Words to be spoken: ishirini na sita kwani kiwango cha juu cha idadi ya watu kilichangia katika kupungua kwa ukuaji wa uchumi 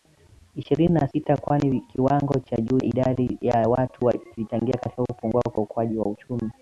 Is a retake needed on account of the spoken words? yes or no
yes